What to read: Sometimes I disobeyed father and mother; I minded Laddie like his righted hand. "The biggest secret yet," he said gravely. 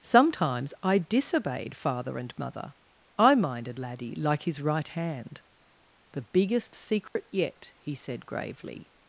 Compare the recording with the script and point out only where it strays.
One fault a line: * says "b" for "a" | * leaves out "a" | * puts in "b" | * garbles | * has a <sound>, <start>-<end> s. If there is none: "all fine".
* says "right" for "righted"
* has a dropout, 7.1-7.2 s